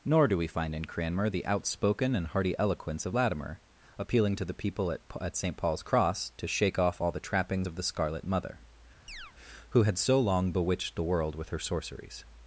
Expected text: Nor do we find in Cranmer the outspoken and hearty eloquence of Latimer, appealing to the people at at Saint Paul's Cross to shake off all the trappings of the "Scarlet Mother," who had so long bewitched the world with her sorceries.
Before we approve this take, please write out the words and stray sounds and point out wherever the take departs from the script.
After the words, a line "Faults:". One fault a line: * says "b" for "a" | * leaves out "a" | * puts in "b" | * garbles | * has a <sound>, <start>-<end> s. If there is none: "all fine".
Nor do we find in Cranmer the outspoken and hearty eloquence of Latimer, appealing to the people at at Saint Paul's Cross to shake off all the trappings of the "Scarlet Mother," who had so long bewitched the world with her sorceries.
Faults:
* has a chirp, 9.1-9.3 s